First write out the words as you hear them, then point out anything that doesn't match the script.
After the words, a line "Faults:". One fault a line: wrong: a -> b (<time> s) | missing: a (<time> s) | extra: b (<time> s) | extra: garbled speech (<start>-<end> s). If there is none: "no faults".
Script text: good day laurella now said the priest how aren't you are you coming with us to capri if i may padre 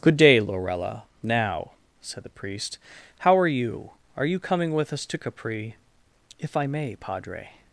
good day laurella now said the priest how are you are you coming with us to capri if i may padre
Faults:
wrong: aren't -> are (3.4 s)